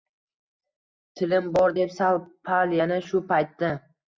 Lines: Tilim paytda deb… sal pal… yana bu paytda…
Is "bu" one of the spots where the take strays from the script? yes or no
yes